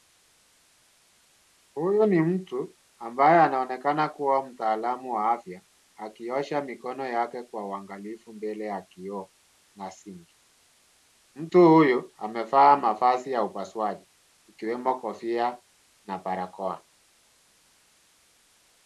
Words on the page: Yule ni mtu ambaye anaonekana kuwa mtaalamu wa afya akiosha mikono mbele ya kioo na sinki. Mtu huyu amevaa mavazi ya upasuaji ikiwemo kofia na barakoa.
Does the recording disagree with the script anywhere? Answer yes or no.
yes